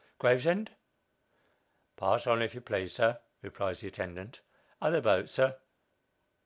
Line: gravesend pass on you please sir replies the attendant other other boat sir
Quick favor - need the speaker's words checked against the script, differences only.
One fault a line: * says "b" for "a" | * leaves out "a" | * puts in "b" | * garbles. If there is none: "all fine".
* puts in "if"
* leaves out "other"